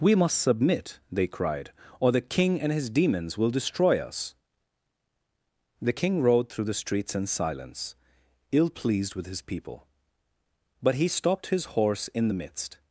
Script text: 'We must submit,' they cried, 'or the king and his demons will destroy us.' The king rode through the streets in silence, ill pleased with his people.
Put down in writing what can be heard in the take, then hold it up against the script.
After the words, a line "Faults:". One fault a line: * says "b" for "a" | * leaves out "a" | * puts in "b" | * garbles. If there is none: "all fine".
'We must submit,' they cried, 'or the king and his demons will destroy us.' The king rode through the streets in silence, ill pleased with his people. But he stopped his horse in the midst
Faults:
* puts in "But he stopped his horse in the midst"